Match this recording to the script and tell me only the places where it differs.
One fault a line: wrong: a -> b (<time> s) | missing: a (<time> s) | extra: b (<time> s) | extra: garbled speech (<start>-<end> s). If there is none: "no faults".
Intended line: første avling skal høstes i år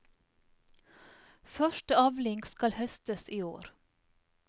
no faults